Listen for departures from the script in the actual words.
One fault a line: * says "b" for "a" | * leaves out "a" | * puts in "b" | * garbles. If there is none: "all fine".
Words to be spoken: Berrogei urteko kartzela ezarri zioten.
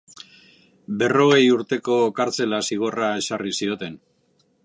* puts in "zigorra"